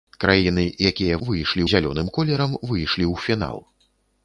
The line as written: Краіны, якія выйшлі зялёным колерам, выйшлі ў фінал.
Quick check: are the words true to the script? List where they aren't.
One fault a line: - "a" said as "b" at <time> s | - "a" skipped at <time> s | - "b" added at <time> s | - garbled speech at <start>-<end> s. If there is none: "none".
none